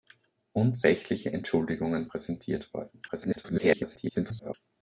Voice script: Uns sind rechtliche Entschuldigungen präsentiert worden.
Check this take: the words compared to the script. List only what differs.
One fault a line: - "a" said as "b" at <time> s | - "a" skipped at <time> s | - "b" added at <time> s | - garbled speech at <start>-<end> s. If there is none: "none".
- "sind" skipped at 0.8 s
- garbled speech at 3.1-4.5 s